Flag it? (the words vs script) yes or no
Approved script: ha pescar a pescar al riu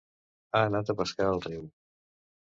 yes